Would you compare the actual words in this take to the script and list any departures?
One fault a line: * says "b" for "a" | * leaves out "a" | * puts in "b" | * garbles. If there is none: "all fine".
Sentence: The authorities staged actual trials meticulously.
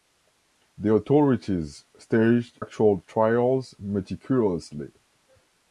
all fine